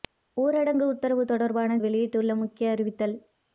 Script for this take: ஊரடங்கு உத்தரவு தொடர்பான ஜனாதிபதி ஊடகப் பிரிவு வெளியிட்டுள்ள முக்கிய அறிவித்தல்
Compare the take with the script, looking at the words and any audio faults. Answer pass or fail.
fail